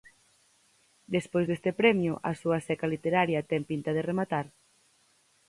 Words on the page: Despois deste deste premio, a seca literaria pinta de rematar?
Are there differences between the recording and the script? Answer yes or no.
yes